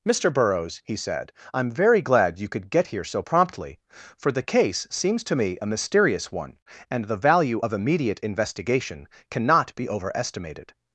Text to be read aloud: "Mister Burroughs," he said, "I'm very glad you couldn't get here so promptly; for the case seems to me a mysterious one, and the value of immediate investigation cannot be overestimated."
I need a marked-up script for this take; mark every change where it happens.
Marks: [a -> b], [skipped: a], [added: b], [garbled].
"Mister Burroughs," he said, "I'm very glad you [couldn't -> could] get here so promptly; for the case seems to me a mysterious one, and the value of immediate investigation cannot be overestimated."